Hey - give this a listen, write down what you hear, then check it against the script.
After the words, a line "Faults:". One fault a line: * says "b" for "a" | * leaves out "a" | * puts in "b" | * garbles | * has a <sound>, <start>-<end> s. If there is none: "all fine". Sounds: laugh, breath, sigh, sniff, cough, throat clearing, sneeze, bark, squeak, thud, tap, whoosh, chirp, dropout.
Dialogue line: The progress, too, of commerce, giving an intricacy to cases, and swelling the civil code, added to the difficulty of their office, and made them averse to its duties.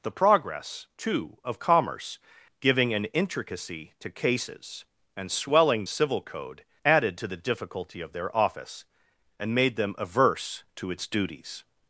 The progress, too, of commerce, giving an intricacy to cases, and swelling civil code, added to the difficulty of their office, and made them averse to its duties.
Faults:
* leaves out "the"